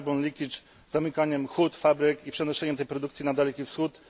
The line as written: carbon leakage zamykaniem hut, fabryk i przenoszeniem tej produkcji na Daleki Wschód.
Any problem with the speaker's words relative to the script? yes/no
no